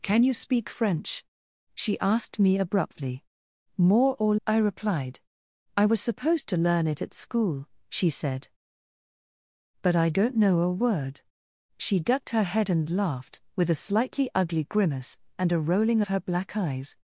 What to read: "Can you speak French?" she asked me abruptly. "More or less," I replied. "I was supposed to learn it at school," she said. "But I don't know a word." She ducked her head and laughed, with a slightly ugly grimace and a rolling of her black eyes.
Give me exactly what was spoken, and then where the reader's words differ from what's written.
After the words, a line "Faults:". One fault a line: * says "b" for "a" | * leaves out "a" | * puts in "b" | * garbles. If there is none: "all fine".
"Can you speak French?" she asked me abruptly. "More or," I replied. "I was supposed to learn it at school," she said. "But I don't know a word." She ducked her head and laughed, with a slightly ugly grimace and a rolling of her black eyes.
Faults:
* leaves out "less"